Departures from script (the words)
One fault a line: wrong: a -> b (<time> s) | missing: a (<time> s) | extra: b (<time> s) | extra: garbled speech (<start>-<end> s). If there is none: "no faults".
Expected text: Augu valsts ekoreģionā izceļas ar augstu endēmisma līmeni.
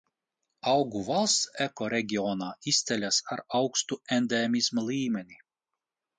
no faults